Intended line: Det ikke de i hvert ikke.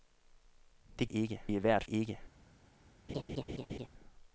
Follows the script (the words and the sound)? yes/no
no